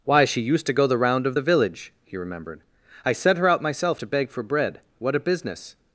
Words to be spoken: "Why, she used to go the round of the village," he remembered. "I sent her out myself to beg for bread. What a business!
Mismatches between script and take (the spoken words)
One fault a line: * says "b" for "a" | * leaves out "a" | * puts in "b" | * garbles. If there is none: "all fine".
all fine